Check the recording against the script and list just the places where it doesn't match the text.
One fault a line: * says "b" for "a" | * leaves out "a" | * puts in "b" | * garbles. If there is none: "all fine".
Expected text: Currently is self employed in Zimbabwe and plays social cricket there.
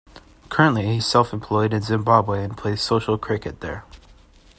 all fine